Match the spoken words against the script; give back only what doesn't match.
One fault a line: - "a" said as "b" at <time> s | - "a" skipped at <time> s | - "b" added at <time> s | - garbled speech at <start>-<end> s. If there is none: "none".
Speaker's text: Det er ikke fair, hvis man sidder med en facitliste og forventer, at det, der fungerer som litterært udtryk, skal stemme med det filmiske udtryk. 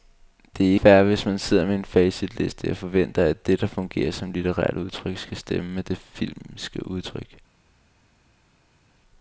- "ikke" skipped at 0.8 s